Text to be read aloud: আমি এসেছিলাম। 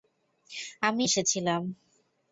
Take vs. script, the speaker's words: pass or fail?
pass